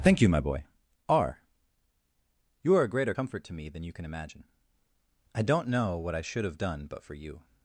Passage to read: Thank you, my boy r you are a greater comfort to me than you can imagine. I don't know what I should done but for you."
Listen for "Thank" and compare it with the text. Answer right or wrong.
right